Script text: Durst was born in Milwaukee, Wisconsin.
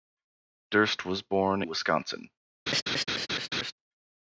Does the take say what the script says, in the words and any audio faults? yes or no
no